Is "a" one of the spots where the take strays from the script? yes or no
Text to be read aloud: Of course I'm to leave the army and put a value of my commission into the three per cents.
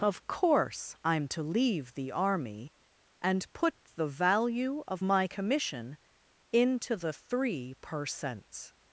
yes